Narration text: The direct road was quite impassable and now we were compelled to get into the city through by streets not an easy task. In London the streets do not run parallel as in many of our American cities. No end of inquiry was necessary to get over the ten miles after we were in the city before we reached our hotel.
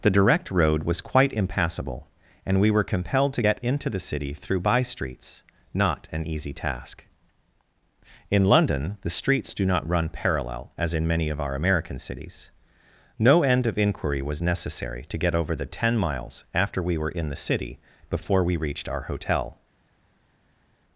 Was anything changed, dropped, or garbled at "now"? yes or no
yes